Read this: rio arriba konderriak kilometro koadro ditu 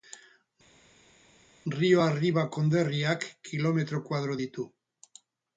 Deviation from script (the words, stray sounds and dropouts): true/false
false